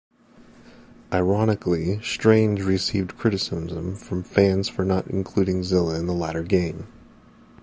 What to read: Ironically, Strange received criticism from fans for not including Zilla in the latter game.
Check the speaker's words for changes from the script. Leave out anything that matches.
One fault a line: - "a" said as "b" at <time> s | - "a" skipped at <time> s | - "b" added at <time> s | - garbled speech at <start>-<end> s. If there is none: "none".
none